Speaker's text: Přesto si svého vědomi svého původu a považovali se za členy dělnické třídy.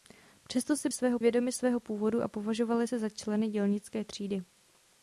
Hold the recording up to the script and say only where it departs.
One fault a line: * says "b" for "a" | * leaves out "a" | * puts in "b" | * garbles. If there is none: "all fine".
all fine